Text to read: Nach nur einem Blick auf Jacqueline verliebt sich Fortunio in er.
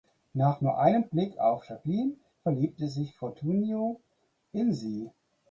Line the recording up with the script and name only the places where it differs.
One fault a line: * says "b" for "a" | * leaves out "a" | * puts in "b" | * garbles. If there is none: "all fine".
* says "sie" for "er"